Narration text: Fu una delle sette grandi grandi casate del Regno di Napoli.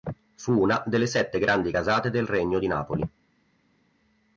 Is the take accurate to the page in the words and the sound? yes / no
no